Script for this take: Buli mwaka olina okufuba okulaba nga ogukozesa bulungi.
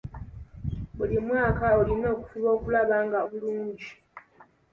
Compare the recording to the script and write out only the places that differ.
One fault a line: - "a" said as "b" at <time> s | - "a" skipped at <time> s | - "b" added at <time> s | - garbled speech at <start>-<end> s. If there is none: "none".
- "ogukozesa" skipped at 3.2 s